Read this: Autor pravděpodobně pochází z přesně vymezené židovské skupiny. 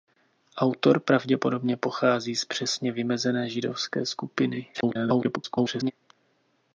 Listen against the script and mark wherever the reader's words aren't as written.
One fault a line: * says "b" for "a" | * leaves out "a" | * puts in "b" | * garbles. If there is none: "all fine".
* garbles